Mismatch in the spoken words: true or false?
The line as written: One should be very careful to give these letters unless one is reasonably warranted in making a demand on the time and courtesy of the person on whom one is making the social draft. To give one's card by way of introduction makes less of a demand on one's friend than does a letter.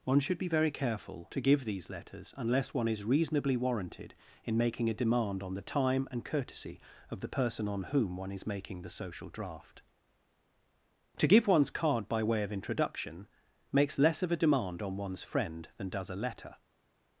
false